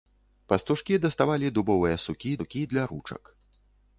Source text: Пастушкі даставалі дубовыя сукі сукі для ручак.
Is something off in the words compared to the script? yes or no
no